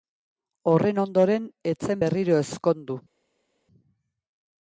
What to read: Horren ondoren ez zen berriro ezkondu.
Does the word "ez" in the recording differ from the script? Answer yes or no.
no